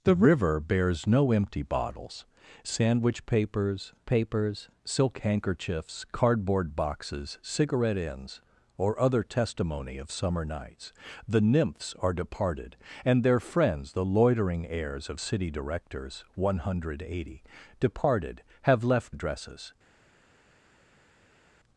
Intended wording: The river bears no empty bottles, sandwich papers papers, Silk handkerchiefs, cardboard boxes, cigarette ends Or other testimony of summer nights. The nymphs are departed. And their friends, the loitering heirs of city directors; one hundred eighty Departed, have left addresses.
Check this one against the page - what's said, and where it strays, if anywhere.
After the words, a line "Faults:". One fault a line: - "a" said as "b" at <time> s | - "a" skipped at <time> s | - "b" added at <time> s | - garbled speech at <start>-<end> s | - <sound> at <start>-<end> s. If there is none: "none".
The river bears no empty bottles, sandwich papers papers, Silk handkerchiefs, cardboard boxes, cigarette ends Or other testimony of summer nights. The nymphs are departed. And their friends, the loitering heirs of city directors; one hundred eighty Departed, have left addresses.
Faults:
none